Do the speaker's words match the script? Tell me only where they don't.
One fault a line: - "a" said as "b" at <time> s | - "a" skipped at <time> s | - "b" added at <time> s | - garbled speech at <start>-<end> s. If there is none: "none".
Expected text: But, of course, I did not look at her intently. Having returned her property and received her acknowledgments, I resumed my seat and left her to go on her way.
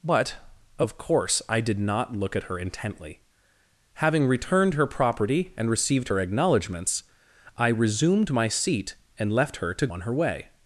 - "go" skipped at 9.9 s